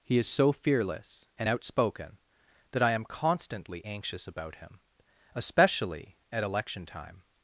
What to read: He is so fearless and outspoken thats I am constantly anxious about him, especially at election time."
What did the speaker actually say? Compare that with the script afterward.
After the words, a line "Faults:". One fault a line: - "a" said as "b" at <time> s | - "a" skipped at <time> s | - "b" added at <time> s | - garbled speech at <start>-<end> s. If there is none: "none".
He is so fearless and outspoken that I am constantly anxious about him, especially at election time."
Faults:
- "thats" said as "that" at 2.7 s